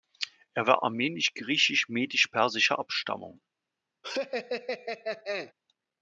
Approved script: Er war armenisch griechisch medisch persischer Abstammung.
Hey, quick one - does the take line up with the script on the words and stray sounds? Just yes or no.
no